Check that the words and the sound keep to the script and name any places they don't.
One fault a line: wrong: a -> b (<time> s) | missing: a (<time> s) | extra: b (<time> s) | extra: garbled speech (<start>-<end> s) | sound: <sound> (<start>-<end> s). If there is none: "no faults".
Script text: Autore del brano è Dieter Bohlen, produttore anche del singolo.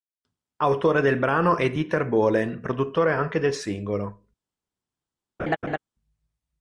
sound: laugh (5.4-5.8 s)